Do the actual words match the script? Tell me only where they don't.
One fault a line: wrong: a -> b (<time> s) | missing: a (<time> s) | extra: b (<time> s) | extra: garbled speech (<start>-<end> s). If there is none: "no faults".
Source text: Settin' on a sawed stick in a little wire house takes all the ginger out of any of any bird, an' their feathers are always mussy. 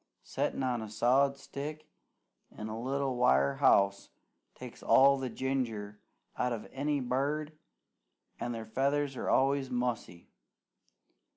missing: of any (7.0 s)